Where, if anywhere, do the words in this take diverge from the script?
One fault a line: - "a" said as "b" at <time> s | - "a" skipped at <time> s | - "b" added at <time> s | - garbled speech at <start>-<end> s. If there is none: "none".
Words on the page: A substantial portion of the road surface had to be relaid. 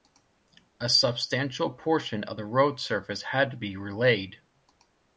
none